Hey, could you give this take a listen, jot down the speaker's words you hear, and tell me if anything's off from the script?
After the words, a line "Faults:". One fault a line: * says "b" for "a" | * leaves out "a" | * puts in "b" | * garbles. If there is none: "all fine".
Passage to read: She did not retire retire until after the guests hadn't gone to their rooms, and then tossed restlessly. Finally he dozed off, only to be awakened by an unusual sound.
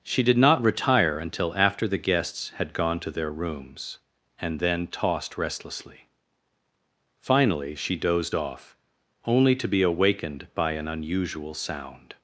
She did not retire until after the guests had gone to their rooms, and then tossed restlessly. Finally she dozed off, only to be awakened by an unusual sound.
Faults:
* leaves out "retire"
* says "had" for "hadn't"
* says "she" for "he"